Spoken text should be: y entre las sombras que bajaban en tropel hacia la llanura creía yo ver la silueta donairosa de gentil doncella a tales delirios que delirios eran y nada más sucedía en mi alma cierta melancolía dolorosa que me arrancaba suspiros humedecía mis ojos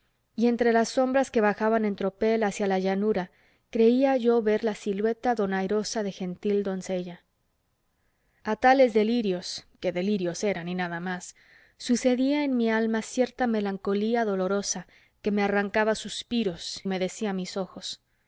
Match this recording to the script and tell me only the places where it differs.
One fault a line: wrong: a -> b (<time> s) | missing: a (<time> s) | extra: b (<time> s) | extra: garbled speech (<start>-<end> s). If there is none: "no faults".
no faults